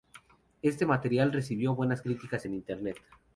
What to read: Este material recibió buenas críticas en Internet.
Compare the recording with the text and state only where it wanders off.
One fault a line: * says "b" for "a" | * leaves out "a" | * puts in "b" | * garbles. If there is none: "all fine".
all fine